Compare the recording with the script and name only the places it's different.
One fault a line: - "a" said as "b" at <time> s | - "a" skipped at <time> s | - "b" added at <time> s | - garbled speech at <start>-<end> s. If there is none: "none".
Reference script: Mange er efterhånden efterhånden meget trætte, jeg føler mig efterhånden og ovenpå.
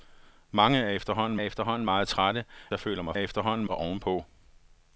none